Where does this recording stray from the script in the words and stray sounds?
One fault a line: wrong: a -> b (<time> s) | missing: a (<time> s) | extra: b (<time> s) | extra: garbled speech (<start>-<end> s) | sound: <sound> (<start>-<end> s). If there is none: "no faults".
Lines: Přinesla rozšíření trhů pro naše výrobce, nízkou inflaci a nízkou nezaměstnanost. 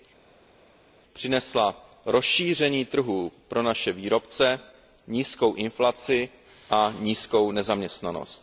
no faults